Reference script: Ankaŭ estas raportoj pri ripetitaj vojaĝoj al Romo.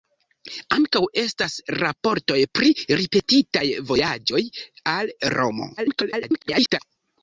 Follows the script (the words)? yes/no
no